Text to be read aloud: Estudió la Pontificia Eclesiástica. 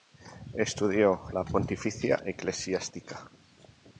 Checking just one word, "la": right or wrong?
right